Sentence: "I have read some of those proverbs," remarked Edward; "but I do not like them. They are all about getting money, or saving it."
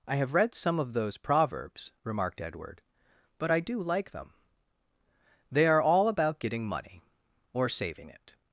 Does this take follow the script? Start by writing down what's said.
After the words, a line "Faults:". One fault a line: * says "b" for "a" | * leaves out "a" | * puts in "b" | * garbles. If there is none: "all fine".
"I have read some of those proverbs," remarked Edward; "but I do like them. They are all about getting money, or saving it."
Faults:
* leaves out "not"